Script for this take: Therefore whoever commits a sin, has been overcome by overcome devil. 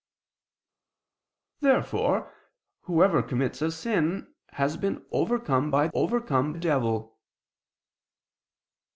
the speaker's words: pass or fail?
pass